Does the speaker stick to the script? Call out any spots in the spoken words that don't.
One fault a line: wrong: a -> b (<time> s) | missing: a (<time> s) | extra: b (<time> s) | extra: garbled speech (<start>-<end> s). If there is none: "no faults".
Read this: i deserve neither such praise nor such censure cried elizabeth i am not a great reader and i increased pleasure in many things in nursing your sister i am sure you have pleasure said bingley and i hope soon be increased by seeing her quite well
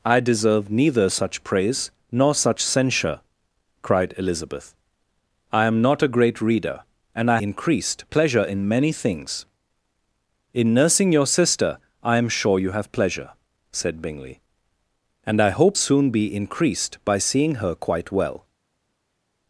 no faults